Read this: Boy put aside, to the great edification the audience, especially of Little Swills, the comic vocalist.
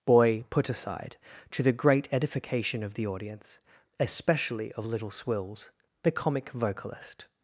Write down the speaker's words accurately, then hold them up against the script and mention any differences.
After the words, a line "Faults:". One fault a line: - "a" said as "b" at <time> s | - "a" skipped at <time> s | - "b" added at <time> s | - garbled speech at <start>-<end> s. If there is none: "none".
Boy put aside, to the great edification of the audience, especially of Little Swills, the comic vocalist.
Faults:
- "of" added at 2.8 s